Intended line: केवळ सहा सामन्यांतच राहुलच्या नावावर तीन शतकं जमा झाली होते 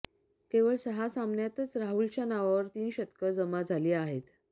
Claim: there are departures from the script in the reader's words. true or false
true